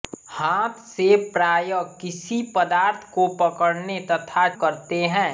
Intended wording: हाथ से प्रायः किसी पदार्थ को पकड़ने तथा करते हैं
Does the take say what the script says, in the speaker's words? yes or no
yes